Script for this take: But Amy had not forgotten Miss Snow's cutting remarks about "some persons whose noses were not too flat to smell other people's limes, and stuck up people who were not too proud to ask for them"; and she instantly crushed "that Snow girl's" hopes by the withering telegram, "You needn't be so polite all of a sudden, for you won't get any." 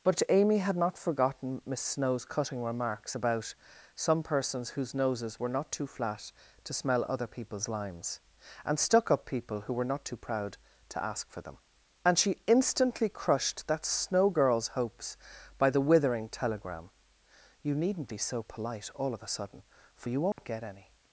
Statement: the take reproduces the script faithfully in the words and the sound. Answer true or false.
false